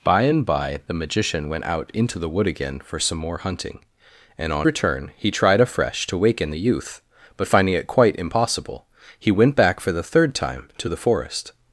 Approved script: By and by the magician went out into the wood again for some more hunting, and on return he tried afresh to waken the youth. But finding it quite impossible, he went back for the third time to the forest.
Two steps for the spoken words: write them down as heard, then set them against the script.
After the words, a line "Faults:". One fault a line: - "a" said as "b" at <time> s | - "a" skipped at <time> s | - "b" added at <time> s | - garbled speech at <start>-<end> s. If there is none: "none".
By and by the magician went out into the wood again for some more hunting, and on return he tried afresh to waken the youth. But finding it quite impossible, he went back for the third time to the forest.
Faults:
none